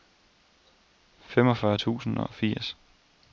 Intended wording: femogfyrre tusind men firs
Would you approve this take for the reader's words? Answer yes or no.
no